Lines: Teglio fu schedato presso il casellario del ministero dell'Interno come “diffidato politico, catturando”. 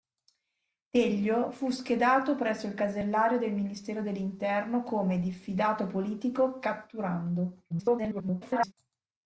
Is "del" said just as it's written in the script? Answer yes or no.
yes